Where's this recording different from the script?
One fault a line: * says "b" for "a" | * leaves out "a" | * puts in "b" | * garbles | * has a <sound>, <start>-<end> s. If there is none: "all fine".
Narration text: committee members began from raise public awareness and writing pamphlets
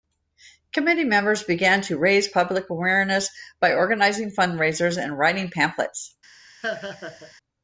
* says "to" for "from"
* puts in "by organizing fundraisers"
* has a laugh, 6.6-7.3 s